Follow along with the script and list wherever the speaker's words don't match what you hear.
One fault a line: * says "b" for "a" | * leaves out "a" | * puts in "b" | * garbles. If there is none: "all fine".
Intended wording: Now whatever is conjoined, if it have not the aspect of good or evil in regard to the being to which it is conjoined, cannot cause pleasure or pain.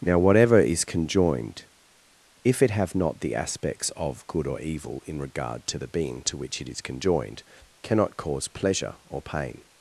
* says "aspects" for "aspect"